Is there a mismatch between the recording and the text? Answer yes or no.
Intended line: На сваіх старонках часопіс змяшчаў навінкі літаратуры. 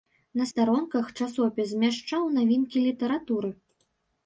yes